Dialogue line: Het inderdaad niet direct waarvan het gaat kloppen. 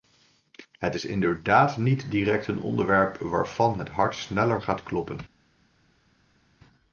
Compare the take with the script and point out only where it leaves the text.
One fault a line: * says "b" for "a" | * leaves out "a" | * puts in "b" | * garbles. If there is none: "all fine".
* puts in "is"
* puts in "een onderwerp"
* puts in "hart sneller"